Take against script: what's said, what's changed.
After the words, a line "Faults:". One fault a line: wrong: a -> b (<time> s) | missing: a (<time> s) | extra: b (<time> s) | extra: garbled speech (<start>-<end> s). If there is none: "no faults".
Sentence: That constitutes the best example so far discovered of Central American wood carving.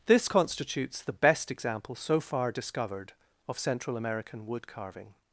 This constitutes the best example so far discovered of Central American wood carving.
Faults:
wrong: That -> This (0.1 s)